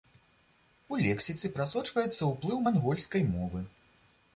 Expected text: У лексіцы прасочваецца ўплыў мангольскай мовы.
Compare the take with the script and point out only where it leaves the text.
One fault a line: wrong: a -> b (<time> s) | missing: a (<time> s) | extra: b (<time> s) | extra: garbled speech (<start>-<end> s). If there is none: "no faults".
no faults